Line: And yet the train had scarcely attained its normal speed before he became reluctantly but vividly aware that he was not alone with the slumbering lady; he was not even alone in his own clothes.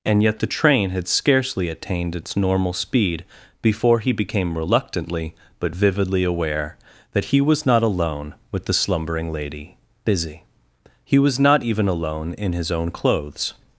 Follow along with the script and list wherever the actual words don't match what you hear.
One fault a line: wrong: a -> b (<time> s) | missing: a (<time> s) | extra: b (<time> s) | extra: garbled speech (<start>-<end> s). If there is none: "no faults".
extra: busy (10.1 s)